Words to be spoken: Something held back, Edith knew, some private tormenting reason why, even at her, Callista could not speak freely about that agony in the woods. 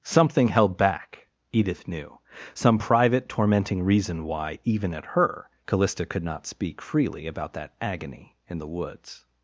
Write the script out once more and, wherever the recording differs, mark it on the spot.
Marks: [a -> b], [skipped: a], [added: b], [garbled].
Something held back, Edith knew, some private tormenting reason why, even at her, Callista could not speak freely about that agony in the woods.